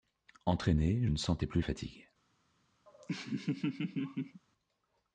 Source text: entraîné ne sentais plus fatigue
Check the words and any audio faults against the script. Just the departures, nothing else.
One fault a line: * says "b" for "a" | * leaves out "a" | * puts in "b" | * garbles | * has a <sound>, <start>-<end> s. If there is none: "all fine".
* has a laugh, 2.9-4.4 s